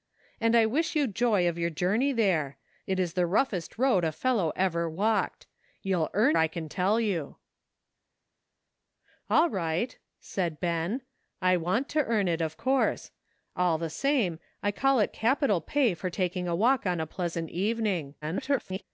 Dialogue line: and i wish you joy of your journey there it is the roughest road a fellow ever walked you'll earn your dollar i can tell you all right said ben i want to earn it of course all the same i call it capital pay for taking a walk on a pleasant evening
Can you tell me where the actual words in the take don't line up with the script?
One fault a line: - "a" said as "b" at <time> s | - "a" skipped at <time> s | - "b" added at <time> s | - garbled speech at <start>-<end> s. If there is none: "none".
- "your dollar" skipped at 6.4 s
- garbled speech at 18.2-18.8 s